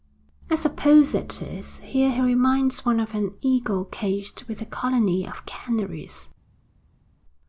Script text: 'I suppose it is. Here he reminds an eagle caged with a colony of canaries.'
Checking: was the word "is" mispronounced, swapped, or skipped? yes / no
no